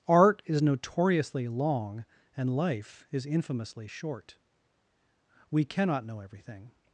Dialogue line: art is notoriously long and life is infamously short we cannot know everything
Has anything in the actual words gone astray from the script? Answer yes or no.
no